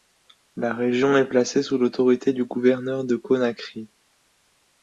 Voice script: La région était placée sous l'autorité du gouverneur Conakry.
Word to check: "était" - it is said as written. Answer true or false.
false